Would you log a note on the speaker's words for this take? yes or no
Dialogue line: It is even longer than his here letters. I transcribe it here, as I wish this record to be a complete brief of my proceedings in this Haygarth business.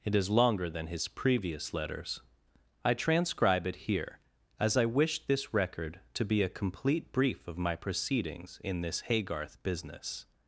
yes